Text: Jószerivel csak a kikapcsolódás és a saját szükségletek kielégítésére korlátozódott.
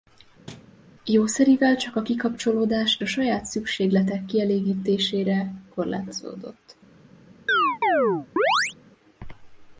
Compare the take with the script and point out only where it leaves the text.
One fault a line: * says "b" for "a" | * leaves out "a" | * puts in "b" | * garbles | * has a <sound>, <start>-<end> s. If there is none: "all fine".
* has a thud, 0.5-0.7 s
* leaves out "és"
* has a chirp, 7.5-8.7 s